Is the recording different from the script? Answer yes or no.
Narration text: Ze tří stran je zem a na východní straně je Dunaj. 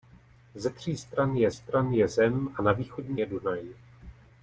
yes